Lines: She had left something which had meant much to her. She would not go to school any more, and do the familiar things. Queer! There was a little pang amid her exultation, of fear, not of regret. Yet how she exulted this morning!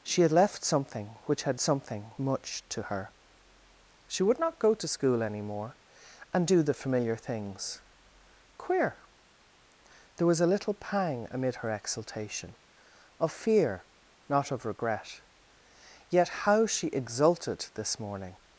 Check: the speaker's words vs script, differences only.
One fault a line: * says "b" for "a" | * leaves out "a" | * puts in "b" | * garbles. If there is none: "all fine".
* says "something" for "meant"